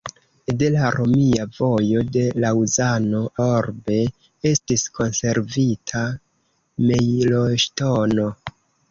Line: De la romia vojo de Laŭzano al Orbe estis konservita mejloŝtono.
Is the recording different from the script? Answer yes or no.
yes